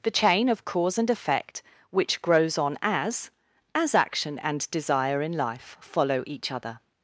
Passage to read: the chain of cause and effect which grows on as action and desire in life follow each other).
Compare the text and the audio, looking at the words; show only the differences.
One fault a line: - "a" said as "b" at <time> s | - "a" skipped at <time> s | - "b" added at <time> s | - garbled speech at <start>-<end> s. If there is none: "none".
- "as" added at 3.8 s